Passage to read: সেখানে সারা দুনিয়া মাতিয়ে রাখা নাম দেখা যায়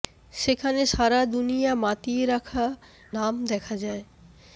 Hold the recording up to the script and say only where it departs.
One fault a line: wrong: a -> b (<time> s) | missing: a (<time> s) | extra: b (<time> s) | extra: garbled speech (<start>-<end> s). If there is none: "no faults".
no faults